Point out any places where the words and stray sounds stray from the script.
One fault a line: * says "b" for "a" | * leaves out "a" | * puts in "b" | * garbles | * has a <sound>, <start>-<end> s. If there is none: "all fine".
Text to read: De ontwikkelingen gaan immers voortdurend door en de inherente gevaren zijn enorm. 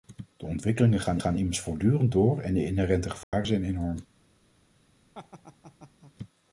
* puts in "gaan"
* has a dropout, 3.2-3.3 s
* has a laugh, 5.1-6.1 s